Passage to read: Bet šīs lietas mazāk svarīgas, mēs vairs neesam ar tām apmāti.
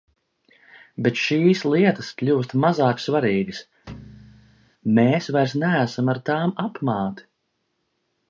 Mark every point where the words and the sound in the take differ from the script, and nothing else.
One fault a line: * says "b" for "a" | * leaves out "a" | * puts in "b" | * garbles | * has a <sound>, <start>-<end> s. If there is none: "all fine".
* puts in "kļūst"
* has a thud, 3.9-4.7 s